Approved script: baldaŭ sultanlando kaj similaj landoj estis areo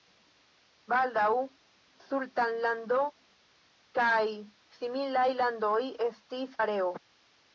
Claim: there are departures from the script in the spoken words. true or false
false